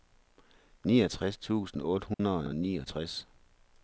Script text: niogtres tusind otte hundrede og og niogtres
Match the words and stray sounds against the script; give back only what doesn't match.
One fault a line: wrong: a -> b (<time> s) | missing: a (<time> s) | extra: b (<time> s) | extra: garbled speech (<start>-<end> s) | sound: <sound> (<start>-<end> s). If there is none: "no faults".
sound: dropout (2.1-2.2 s)